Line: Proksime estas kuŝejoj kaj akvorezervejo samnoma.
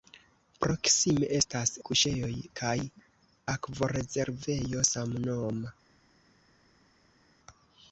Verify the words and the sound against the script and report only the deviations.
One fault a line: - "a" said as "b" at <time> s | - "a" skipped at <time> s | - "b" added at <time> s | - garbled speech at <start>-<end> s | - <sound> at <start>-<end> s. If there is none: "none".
none